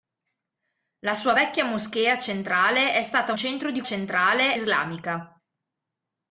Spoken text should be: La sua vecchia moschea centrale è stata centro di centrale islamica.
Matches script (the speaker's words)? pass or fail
pass